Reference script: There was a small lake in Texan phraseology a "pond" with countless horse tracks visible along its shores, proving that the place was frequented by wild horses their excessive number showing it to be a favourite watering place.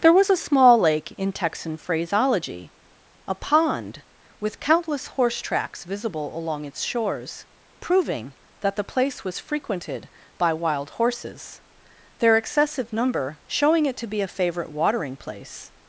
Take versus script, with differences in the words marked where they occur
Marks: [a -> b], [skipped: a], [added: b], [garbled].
There was a small lake in Texan phraseology a "pond" with countless horse tracks visible along its shores, proving that the place was frequented by wild horses their excessive number showing it to be a favourite watering place.